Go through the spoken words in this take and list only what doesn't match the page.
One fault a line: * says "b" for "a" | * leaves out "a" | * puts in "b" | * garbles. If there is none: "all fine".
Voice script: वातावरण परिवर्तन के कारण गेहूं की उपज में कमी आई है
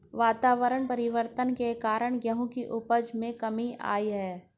all fine